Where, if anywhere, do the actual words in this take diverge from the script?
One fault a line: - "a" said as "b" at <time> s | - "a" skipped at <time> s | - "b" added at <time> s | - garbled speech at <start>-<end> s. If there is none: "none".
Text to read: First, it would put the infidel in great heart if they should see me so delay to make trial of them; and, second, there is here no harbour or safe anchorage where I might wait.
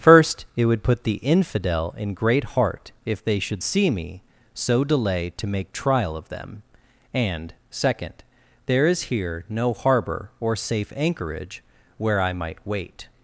none